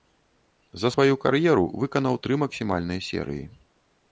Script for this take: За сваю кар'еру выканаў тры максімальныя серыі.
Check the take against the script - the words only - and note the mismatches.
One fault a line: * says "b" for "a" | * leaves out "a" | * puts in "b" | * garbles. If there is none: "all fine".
all fine